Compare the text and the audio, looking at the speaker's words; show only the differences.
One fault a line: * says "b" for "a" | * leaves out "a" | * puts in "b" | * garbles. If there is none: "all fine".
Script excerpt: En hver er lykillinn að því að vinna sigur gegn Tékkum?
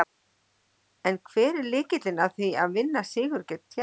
all fine